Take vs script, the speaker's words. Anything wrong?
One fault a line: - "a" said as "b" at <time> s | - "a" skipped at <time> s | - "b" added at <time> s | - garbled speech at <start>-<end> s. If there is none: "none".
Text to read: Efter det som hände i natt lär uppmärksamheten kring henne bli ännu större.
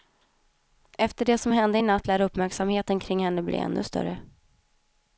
none